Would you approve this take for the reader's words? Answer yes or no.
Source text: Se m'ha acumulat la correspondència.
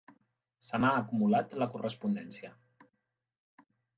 yes